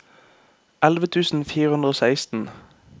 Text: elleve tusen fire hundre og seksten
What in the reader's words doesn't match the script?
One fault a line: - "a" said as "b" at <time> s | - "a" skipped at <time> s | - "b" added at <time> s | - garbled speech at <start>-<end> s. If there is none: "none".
none